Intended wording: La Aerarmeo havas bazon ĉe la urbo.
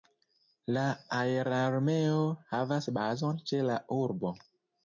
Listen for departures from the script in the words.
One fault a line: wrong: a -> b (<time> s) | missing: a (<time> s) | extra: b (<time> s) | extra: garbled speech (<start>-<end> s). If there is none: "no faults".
no faults